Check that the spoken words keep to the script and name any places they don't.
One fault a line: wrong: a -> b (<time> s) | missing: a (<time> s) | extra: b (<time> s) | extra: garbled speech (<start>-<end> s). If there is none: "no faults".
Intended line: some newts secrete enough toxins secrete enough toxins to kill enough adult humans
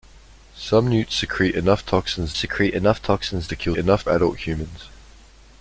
no faults